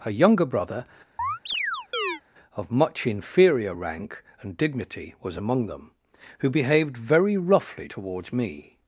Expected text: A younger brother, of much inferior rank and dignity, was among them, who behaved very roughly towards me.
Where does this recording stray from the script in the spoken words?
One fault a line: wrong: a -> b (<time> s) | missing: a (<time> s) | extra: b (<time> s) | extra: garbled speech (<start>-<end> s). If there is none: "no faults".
no faults